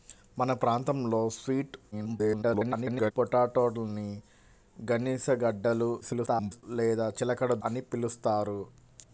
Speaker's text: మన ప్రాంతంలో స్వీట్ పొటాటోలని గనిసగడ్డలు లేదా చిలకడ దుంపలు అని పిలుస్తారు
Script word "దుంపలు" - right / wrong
wrong